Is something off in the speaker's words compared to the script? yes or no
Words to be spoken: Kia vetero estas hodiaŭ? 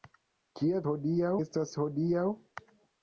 yes